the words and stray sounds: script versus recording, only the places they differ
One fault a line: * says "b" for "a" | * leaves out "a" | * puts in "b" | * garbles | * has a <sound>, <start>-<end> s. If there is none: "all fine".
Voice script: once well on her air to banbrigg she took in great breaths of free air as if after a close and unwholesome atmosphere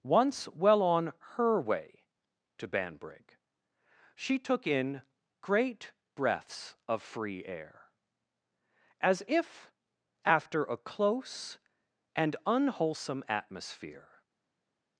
* says "way" for "air"